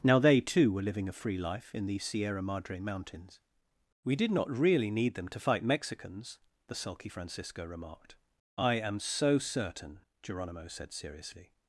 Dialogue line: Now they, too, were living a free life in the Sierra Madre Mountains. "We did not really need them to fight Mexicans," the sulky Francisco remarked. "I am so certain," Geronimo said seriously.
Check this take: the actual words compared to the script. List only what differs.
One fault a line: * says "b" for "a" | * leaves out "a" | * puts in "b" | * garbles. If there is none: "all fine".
all fine